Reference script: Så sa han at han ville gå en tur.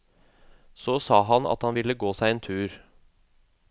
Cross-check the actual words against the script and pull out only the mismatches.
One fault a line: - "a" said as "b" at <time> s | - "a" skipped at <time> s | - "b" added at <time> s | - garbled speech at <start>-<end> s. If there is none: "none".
- "seg" added at 2.2 s